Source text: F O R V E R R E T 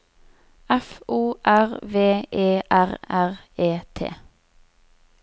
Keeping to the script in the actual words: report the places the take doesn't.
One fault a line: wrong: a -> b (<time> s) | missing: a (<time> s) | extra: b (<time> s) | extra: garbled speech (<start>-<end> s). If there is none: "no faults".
no faults